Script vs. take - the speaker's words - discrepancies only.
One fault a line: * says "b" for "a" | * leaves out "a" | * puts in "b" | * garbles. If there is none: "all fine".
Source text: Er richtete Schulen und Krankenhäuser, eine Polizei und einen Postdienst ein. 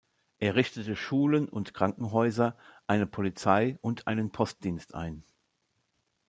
all fine